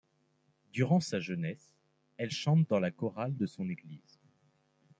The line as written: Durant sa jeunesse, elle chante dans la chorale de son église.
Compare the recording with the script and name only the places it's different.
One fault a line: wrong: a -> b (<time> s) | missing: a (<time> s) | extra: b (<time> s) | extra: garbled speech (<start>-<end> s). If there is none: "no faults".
no faults